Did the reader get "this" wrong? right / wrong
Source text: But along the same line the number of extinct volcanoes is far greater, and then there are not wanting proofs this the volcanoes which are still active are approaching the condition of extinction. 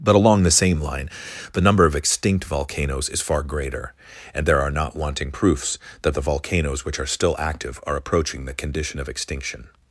wrong